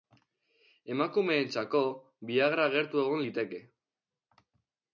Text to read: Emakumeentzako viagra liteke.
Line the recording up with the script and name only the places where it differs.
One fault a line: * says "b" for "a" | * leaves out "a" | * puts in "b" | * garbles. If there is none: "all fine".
* puts in "gertu egon"